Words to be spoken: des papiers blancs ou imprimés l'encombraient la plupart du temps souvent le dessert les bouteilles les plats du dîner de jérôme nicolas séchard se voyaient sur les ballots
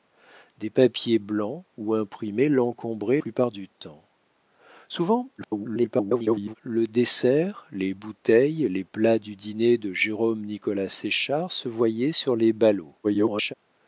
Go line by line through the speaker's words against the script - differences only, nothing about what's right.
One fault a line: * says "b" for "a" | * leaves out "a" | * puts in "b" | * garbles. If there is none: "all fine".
* leaves out "la"
* garbles
* garbles